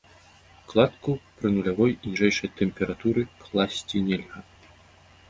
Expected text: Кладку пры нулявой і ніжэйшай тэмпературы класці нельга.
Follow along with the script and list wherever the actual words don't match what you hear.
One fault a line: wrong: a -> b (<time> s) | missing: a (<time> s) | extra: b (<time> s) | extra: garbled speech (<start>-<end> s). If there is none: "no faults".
no faults